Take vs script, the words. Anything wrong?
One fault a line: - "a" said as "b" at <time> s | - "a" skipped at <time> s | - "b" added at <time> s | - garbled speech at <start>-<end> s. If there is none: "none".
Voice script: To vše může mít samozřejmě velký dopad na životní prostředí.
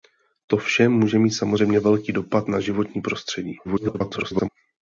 - garbled speech at 3.6-4.5 s